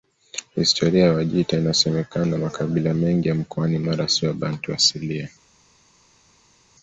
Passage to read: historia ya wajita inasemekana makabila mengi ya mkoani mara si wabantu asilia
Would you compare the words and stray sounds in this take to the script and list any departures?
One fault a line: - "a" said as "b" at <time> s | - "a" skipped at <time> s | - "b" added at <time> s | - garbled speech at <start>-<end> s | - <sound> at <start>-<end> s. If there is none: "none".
none